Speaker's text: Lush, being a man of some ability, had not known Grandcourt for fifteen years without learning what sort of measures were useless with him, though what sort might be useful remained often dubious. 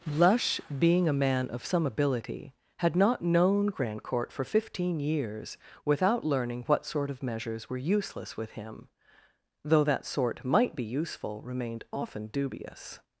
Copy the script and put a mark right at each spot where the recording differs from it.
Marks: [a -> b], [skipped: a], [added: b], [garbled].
Lush, being a man of some ability, had not known Grandcourt for fifteen years without learning what sort of measures were useless with him, though [what -> that] sort might be useful remained often dubious.